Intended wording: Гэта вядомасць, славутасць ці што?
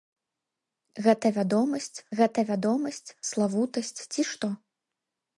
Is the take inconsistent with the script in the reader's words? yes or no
yes